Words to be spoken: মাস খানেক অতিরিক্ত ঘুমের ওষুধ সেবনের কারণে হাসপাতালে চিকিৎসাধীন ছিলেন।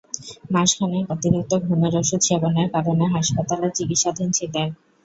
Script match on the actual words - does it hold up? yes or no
yes